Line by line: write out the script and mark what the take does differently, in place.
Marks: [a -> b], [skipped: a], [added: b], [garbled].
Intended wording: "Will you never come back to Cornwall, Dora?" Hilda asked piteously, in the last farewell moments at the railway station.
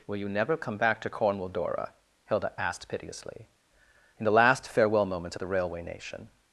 "Will you never come back to Cornwall, Dora?" Hilda asked piteously, in the last farewell moments at the railway [station. -> nation]